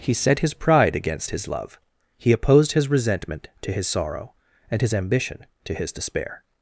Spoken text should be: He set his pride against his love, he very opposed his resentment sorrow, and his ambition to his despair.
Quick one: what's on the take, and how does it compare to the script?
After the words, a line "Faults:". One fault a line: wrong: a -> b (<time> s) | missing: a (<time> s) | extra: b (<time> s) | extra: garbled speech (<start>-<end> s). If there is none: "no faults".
He set his pride against his love, he opposed his resentment to his sorrow, and his ambition to his despair.
Faults:
missing: very (2.3 s)
extra: to his (3.6 s)